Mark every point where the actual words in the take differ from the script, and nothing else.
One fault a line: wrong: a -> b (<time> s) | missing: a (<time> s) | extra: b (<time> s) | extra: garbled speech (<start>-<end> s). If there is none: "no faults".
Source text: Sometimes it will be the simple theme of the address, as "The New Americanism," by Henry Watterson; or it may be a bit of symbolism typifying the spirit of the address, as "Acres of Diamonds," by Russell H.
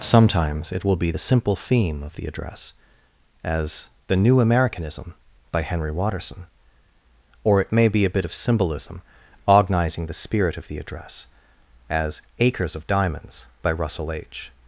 wrong: typifying -> ognizing (9.4 s)